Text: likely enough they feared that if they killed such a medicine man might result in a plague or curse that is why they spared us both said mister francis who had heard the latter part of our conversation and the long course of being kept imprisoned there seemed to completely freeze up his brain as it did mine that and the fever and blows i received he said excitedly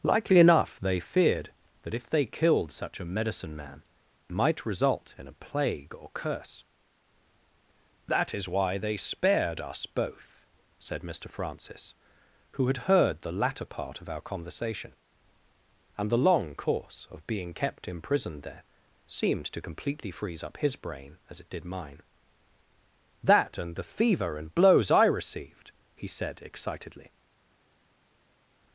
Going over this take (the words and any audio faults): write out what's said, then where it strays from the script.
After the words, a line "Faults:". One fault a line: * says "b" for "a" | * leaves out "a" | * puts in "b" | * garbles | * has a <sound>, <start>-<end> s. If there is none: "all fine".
likely enough they feared that if they killed such a medicine man might result in a plague or curse that is why they spared us both said mister francis who had heard the latter part of our conversation and the long course of being kept imprisoned there seemed to completely freeze up his brain as it did mine that and the fever and blows i received he said excitedly
Faults:
all fine